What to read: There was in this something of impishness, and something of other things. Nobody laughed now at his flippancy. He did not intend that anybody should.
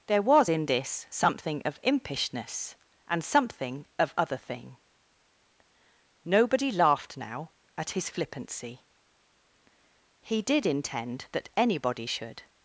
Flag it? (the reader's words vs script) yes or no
yes